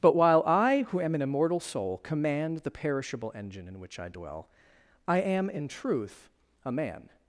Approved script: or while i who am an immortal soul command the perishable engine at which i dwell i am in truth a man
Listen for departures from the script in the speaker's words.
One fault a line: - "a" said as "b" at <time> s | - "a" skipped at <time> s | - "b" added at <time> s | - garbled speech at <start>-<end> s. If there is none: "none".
- "or" said as "but" at 0.0 s
- "at" said as "in" at 3.7 s